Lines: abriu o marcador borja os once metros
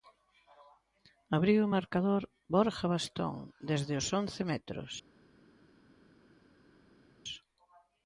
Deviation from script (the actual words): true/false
true